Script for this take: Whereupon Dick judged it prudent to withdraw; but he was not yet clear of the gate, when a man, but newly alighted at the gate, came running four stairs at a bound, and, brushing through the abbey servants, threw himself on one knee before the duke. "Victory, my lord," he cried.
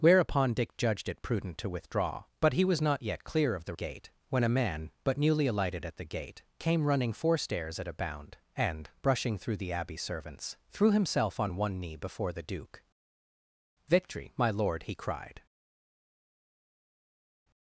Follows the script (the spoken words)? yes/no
yes